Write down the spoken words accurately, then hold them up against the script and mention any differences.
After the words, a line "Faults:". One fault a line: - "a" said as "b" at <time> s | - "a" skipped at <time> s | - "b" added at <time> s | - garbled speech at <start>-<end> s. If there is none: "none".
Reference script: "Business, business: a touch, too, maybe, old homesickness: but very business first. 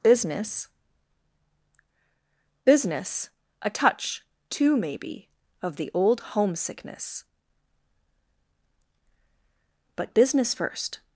"Business, business: a touch, too, maybe, of the old homesickness: but business first.
Faults:
- "of the" added at 5.6 s
- "very" skipped at 10.2 s